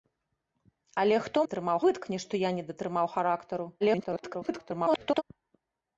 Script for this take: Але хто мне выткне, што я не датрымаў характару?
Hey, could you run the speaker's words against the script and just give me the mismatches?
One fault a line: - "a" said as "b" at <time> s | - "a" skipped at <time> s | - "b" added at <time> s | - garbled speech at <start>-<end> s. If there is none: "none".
- "мне" said as "датрымаў" at 1.4 s
- garbled speech at 3.8-5.2 s